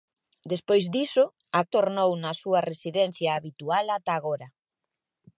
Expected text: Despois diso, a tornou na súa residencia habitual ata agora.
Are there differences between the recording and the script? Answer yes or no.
no